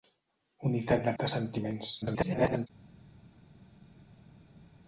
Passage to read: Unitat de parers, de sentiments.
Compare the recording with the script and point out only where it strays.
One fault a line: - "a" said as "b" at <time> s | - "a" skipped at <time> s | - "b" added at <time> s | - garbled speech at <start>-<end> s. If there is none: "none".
- "parers" skipped at 1.1 s
- garbled speech at 2.0-2.7 s